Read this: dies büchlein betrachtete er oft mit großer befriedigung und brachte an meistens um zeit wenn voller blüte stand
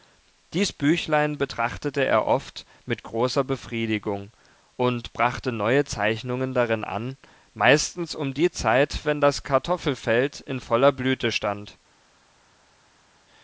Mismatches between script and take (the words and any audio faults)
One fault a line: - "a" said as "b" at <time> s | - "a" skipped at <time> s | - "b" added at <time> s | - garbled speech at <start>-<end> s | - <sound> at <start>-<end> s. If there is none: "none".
- "neue zeichnungen darin" added at 5.5 s
- "die" added at 8.3 s
- "das kartoffelfeld in" added at 9.2 s